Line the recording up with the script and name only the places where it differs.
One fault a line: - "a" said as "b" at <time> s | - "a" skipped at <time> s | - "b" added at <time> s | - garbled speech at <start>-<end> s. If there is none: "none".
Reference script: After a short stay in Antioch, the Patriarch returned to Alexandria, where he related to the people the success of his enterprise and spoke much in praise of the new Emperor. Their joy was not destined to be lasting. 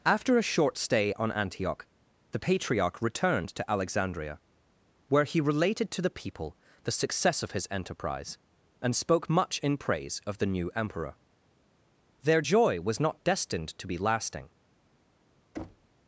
- "in" said as "on" at 1.1 s